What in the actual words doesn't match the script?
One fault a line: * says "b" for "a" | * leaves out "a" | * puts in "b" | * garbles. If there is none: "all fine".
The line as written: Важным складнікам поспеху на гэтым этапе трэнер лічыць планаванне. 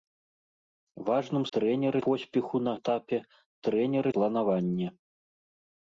* says "трэнер" for "складнікам"
* leaves out "гэтым"
* leaves out "лічыць"